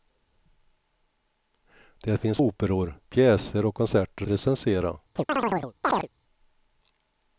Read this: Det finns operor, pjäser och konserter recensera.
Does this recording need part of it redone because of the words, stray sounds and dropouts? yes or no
yes